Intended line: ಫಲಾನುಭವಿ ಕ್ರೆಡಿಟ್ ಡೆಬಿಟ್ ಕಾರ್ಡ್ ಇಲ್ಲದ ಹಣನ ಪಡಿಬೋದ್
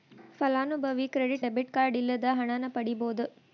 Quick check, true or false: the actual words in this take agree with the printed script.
true